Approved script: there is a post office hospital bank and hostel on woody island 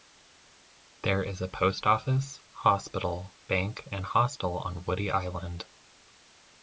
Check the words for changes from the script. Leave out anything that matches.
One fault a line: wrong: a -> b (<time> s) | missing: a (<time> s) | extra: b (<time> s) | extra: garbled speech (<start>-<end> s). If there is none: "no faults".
no faults